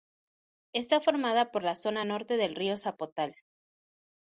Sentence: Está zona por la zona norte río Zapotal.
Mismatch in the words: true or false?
true